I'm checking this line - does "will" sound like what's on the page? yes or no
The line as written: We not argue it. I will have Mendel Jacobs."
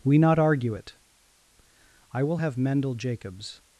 yes